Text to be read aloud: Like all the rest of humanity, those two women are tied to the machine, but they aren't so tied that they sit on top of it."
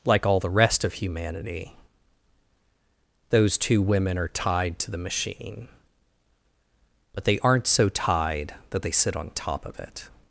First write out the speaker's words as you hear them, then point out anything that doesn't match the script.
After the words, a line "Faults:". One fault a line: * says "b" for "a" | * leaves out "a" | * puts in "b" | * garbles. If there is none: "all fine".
Like all the rest of humanity, those two women are tied to the machine, but they aren't so tied that they sit on top of it."
Faults:
all fine